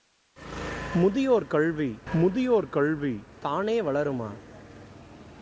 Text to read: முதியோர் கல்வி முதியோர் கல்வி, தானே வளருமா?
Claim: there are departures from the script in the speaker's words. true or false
false